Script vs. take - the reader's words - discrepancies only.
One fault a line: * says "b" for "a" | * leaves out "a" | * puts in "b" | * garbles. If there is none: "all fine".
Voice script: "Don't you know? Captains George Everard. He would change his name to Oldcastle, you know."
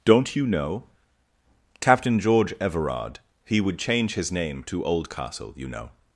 * says "Captain" for "Captains"